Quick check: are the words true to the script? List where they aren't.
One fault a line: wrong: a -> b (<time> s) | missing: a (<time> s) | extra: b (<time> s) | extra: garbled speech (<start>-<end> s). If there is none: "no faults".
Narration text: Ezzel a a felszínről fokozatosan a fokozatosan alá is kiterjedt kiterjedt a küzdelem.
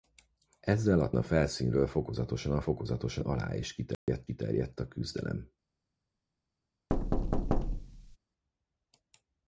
no faults